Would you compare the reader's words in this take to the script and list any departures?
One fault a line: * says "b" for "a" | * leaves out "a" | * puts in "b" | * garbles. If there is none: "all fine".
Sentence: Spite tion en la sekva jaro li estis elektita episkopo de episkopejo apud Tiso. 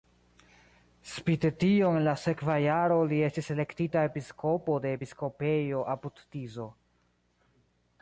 all fine